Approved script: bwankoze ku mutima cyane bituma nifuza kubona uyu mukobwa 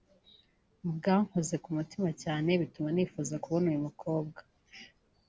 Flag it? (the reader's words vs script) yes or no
no